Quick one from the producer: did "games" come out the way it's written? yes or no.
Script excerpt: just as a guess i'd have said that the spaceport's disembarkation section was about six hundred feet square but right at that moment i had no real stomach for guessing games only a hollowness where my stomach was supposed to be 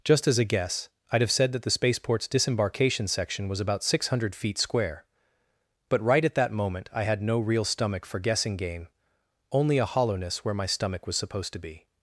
no